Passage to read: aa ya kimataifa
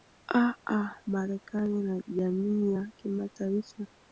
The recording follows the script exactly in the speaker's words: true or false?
false